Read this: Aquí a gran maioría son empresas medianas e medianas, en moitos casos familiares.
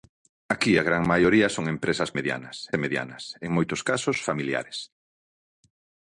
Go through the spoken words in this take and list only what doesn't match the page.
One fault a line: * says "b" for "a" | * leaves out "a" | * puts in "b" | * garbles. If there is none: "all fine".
all fine